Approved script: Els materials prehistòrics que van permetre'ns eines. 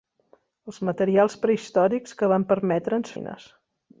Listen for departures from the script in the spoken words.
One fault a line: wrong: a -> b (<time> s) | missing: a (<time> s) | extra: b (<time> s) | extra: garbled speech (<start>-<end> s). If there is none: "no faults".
no faults